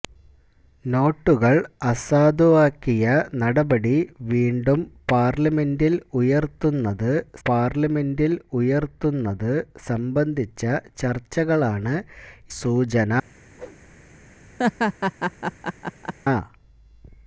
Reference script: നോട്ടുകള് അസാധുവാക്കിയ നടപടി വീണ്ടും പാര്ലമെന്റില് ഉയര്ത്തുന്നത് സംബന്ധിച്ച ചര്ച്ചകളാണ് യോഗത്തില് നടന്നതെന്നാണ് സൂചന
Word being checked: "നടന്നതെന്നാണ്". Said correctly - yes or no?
no